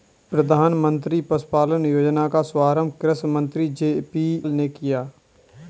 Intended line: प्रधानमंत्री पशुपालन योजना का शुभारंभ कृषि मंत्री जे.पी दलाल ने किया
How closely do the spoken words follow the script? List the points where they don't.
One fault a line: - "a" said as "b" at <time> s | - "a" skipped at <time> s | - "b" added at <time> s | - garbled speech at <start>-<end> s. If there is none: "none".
- "दलाल" skipped at 4.4 s